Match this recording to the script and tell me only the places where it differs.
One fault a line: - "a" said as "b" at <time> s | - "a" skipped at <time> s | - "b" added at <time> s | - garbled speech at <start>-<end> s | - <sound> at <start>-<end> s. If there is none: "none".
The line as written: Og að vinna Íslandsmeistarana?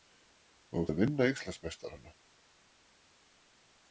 none